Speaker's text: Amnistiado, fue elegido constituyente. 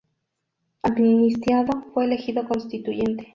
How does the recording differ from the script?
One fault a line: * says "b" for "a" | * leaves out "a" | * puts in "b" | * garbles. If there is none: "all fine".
all fine